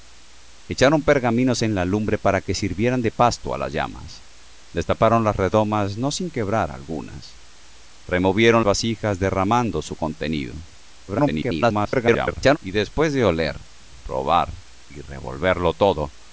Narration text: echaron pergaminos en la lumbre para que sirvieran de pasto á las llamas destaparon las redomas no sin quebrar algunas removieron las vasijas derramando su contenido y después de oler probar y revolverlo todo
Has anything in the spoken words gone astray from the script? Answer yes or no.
yes